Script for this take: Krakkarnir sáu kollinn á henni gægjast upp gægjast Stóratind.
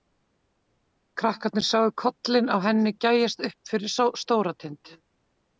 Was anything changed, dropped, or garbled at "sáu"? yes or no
no